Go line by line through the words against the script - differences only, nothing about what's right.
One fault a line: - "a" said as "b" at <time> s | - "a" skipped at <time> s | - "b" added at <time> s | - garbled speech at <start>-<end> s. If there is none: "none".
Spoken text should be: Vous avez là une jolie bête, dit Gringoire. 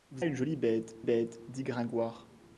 - "avez là" skipped at 0.2 s
- "bête" added at 1.0 s